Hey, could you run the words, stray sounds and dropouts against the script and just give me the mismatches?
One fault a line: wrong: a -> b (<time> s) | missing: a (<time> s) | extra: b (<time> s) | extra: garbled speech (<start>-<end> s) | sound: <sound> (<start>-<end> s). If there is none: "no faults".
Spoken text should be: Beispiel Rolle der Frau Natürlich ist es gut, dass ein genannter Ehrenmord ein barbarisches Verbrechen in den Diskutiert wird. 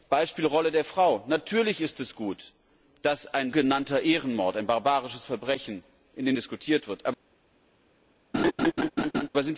sound: laugh (8.3-9.3 s)